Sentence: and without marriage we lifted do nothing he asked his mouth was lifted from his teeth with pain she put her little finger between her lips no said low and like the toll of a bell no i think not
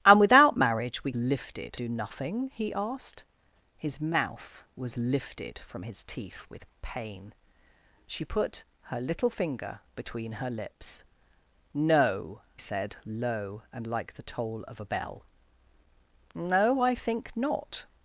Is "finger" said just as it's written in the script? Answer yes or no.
yes